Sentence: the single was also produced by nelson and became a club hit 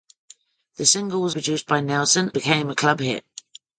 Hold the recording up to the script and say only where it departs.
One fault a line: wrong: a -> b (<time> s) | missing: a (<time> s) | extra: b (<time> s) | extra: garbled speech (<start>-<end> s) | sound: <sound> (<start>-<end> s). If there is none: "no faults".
missing: also (1.4 s)
missing: and (2.3 s)